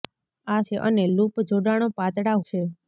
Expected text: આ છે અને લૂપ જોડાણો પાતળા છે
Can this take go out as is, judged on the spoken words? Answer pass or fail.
pass